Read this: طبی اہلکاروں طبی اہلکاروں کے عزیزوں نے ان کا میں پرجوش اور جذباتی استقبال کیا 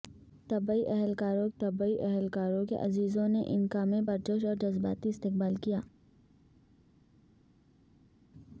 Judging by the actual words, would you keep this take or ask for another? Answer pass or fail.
pass